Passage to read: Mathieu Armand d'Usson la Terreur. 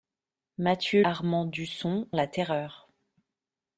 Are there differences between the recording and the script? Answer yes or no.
no